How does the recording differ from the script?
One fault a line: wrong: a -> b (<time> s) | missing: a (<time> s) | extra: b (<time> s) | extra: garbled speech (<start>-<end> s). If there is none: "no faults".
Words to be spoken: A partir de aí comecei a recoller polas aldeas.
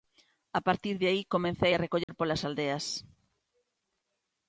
no faults